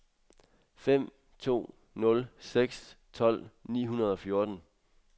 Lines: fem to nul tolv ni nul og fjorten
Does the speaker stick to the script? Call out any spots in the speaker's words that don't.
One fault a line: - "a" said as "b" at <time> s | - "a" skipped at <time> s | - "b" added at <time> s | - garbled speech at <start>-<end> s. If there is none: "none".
- "seks" added at 2.4 s
- "nul" said as "hundrede" at 3.9 s